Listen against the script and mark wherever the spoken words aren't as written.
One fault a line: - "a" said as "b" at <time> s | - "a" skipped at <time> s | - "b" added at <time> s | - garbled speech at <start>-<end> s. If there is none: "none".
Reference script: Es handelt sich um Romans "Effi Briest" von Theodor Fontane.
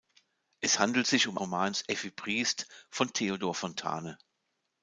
none